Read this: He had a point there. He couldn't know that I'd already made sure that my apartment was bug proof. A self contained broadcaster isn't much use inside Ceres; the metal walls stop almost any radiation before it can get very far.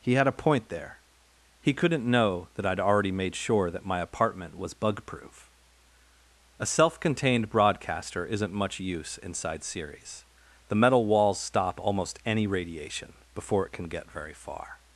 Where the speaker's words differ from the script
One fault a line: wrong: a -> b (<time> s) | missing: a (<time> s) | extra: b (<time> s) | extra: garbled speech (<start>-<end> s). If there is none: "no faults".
no faults